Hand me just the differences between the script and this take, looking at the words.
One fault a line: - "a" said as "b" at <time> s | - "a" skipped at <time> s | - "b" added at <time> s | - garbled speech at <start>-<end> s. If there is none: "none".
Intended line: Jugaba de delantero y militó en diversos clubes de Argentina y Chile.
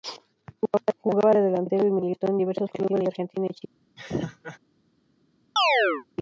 none